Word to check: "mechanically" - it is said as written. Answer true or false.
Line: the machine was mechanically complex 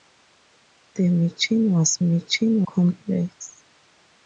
false